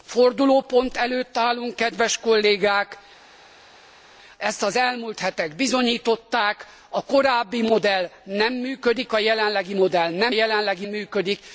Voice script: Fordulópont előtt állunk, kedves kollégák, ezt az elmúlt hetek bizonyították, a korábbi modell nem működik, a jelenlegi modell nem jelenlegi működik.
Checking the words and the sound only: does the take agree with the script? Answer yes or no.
yes